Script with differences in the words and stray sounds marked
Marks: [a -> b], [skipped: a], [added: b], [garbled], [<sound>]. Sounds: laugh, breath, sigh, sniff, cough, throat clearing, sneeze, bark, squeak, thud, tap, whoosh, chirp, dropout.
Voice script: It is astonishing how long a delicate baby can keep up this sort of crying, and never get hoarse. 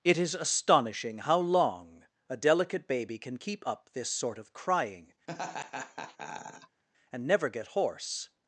It is astonishing how long a delicate baby can keep up this sort of crying, [laugh] and never get hoarse.